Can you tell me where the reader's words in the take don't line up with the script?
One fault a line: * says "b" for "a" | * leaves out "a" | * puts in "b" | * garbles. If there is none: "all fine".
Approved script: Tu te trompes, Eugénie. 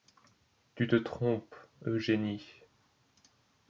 all fine